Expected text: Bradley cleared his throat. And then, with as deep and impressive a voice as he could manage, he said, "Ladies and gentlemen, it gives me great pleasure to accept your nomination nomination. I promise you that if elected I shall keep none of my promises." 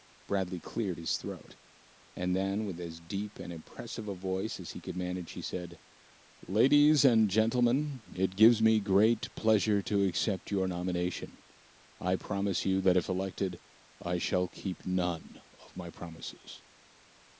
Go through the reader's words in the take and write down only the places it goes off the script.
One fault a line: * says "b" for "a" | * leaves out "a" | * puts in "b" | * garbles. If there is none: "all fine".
* leaves out "nomination"